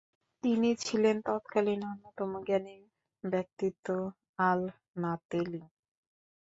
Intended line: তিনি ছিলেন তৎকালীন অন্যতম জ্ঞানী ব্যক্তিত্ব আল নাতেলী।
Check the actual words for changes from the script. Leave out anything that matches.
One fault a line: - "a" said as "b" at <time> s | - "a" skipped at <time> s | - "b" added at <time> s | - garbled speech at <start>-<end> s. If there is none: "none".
none